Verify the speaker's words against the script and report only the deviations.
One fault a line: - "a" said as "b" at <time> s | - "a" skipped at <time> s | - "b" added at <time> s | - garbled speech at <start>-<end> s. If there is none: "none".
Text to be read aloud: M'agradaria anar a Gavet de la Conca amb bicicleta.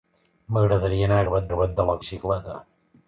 - "Gavet" added at 1.5 s
- "Conca amb" skipped at 2.0 s